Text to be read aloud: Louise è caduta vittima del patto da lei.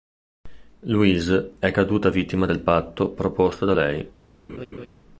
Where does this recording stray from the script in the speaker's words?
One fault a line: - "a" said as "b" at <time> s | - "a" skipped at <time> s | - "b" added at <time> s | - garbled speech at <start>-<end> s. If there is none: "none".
- "proposto" added at 3.1 s